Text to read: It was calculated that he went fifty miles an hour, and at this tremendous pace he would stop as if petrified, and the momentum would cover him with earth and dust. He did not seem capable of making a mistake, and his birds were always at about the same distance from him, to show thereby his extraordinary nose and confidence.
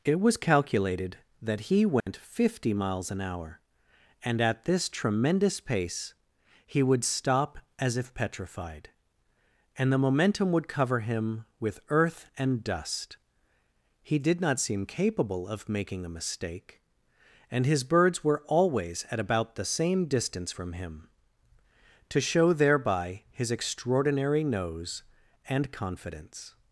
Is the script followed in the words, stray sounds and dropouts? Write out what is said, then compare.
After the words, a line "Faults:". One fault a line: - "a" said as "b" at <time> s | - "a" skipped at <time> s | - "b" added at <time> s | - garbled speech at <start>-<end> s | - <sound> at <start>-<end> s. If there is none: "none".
It was calculated that he went fifty miles an hour, and at this tremendous pace he would stop as if petrified, and the momentum would cover him with earth and dust. He did not seem capable of making a mistake, and his birds were always at about the same distance from him, to show thereby his extraordinary nose and confidence.
Faults:
- dropout at 2.0-2.1 s